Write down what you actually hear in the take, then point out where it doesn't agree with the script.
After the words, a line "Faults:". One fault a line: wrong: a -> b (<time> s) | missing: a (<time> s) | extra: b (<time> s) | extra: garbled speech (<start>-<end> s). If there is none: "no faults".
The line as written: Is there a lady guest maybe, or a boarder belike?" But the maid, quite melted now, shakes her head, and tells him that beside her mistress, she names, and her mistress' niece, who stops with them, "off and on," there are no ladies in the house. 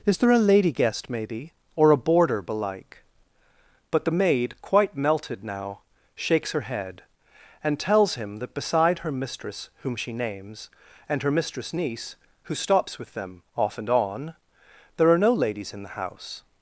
Is there a lady guest maybe, or a boarder belike?" But the maid, quite melted now, shakes her head, and tells him that beside her mistress, whom she names, and her mistress' niece, who stops with them, "off and on," there are no ladies in the house.
Faults:
extra: whom (9.8 s)